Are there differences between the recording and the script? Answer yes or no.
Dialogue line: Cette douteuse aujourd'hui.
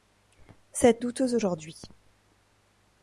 no